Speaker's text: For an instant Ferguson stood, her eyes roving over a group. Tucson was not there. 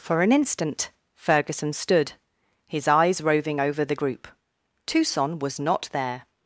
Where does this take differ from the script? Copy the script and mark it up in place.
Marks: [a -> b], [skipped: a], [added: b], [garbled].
For an instant Ferguson stood, [her -> his] eyes roving over [a -> the] group. Tucson was not there.